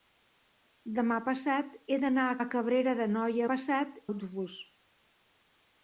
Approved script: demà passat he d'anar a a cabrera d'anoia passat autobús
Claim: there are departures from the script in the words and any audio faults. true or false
false